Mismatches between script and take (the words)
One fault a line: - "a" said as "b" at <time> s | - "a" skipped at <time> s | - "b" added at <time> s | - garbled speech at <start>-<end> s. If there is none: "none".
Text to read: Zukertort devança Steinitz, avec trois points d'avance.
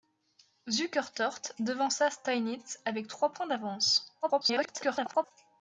- garbled speech at 4.2-5.3 s